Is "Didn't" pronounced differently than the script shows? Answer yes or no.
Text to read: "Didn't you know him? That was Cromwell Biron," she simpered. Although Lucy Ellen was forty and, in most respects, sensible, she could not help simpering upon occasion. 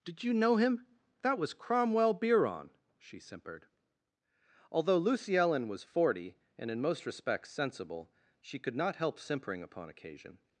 yes